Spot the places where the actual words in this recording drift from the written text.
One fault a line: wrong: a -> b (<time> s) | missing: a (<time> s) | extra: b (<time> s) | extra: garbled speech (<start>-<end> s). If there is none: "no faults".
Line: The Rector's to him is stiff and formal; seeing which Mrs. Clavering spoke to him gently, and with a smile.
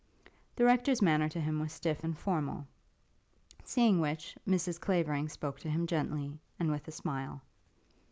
extra: manner (1.0 s)
wrong: is -> was (1.6 s)